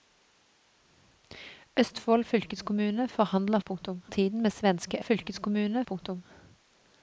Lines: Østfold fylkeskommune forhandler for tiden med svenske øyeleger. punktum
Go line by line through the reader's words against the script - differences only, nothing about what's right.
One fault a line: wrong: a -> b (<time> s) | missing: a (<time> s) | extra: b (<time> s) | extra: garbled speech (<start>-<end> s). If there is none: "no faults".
wrong: for -> punktum (3.6 s)
wrong: øyeleger -> fylkeskommune (5.0 s)